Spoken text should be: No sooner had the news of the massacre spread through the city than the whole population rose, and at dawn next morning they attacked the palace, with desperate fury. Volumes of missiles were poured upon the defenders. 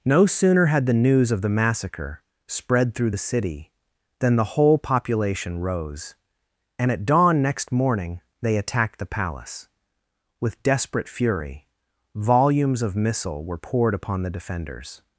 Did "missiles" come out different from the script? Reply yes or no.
yes